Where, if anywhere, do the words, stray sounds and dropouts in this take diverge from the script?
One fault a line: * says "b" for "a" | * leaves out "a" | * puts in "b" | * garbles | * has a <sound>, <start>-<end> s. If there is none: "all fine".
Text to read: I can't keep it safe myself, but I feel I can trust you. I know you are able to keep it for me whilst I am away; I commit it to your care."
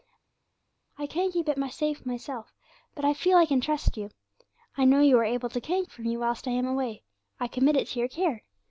* says "can't" for "keep"